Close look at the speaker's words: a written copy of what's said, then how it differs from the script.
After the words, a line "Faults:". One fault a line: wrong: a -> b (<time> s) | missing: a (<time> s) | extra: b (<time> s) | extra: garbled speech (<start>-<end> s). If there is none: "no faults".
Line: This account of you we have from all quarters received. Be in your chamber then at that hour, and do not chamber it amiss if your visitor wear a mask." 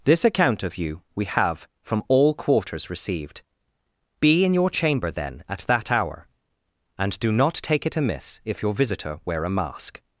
This account of you we have from all quarters received. Be in your chamber then at that hour, and do not take it amiss if your visitor wear a mask."
Faults:
wrong: chamber -> take (7.5 s)